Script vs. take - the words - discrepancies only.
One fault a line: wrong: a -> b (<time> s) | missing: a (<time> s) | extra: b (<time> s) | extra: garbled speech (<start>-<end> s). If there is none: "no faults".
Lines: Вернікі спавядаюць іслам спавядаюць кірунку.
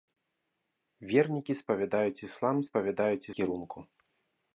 no faults